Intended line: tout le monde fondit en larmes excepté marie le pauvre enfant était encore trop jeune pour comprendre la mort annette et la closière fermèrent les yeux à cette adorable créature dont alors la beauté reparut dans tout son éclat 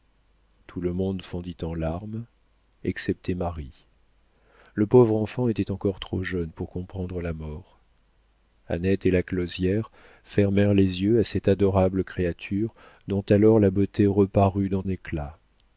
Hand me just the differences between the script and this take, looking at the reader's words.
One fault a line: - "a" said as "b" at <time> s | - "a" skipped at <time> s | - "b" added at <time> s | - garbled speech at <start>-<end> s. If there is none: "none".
- "tout son" skipped at 14.8 s